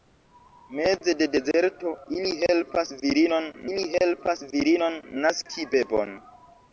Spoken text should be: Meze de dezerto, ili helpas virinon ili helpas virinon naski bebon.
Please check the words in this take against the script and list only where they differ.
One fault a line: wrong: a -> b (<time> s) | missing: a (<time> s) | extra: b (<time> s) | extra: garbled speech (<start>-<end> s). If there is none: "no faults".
no faults